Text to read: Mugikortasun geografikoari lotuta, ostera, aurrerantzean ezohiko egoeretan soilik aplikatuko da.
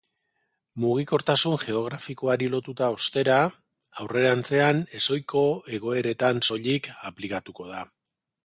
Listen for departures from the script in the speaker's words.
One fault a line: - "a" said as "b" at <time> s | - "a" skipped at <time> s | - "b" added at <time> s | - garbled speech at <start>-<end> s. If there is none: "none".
none